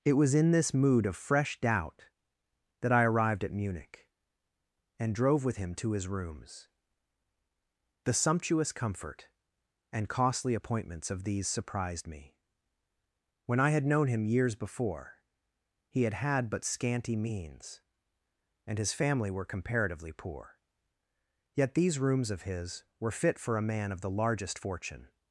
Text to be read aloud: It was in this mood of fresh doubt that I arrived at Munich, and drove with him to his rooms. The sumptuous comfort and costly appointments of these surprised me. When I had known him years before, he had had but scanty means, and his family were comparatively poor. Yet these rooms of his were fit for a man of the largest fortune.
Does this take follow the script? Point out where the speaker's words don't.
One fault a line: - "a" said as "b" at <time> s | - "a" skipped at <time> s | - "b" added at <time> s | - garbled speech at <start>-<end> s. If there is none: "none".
none